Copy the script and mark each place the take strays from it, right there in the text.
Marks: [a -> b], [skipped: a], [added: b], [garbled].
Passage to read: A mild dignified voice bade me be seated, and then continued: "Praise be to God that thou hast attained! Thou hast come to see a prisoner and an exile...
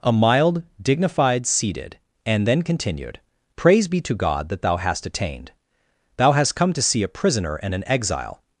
A mild dignified [skipped: voice bade me be] seated, and then continued: "Praise be to God that thou hast attained! Thou hast come to see a prisoner and an exile...